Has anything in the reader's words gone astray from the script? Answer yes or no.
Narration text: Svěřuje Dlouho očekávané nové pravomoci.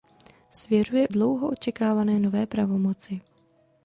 no